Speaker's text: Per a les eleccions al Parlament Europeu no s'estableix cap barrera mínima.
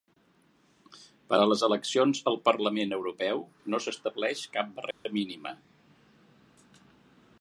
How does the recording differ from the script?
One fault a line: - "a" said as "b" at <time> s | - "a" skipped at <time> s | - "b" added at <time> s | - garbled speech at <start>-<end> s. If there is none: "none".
none